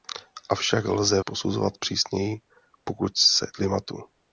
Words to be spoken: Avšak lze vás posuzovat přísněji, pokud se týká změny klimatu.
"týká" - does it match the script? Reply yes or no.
no